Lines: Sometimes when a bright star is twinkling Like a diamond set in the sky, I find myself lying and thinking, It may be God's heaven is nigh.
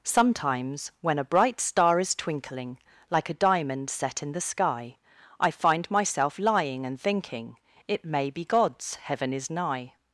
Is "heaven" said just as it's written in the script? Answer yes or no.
yes